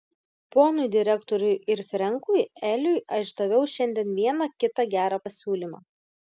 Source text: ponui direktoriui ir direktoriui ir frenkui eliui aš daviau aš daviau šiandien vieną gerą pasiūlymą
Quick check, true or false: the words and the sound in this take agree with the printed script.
false